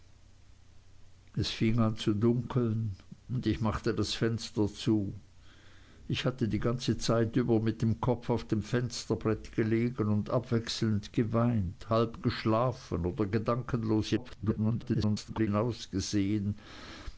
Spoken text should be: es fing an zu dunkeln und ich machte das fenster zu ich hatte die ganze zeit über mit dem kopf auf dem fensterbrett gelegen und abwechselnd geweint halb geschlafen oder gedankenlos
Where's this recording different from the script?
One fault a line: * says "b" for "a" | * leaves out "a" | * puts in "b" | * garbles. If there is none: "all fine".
* garbles